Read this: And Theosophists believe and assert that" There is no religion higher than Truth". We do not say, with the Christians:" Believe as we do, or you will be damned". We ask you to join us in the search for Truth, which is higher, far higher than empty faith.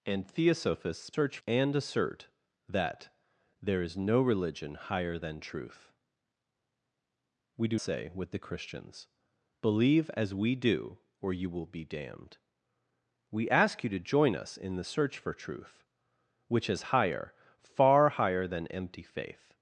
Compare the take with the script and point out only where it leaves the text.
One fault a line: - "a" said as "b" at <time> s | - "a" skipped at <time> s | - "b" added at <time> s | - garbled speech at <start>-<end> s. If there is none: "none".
- "believe" said as "search" at 1.1 s
- "not" skipped at 7.8 s